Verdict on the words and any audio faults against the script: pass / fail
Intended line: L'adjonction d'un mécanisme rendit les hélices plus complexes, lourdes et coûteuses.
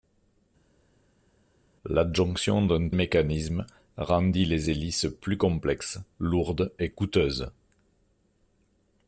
pass